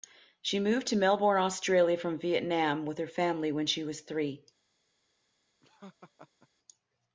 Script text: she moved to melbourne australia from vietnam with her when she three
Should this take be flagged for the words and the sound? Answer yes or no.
yes